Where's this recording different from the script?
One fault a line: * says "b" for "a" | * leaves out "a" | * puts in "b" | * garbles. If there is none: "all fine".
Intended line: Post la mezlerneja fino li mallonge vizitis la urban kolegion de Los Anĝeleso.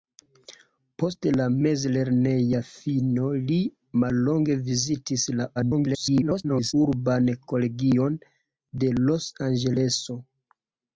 * garbles